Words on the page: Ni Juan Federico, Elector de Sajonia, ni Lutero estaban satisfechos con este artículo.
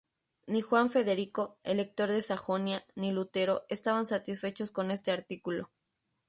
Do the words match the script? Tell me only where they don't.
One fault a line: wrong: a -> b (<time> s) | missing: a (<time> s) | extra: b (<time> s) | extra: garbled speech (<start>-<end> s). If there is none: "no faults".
no faults